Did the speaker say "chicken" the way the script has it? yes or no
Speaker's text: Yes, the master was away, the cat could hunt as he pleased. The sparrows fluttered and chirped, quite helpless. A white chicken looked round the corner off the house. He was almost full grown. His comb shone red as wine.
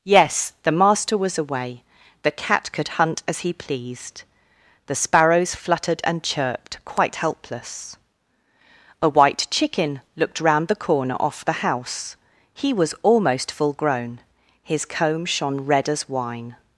yes